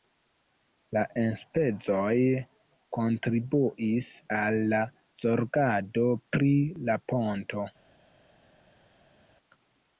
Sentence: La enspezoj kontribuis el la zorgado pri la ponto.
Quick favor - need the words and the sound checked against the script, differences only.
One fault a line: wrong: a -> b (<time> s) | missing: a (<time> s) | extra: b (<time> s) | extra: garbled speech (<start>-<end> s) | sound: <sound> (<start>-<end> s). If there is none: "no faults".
wrong: el -> al (4.4 s)